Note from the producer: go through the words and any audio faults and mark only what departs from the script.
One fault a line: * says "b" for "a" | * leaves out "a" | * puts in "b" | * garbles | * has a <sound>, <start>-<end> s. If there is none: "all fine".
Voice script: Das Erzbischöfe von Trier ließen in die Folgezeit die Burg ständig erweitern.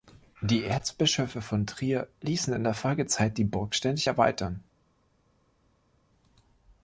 * says "Die" for "Das"
* says "der" for "die"